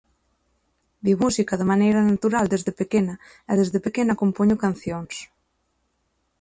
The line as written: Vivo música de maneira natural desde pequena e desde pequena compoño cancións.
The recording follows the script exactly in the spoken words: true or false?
true